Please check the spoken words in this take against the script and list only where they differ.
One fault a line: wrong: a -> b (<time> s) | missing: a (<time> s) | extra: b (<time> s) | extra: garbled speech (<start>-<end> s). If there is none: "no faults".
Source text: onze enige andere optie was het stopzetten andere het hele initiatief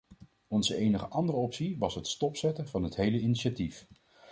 wrong: andere -> van (2.7 s)